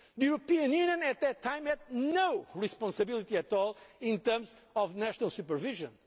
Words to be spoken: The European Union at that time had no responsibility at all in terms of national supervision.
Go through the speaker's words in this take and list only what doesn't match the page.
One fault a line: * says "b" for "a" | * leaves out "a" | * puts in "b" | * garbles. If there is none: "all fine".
all fine